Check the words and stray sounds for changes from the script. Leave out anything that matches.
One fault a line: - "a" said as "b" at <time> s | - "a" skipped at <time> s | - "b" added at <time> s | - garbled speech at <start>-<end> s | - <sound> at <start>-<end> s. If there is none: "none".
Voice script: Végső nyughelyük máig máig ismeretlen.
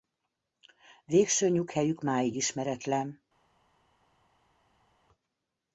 - "máig" skipped at 2.4 s